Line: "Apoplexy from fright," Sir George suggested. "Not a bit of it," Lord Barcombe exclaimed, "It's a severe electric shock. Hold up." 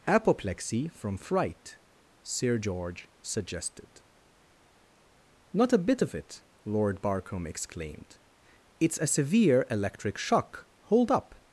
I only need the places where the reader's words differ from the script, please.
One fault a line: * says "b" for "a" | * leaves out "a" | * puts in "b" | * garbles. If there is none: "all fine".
all fine